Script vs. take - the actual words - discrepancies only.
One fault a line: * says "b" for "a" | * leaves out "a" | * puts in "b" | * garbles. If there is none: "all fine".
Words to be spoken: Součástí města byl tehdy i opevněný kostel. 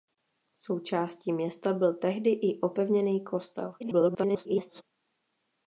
* garbles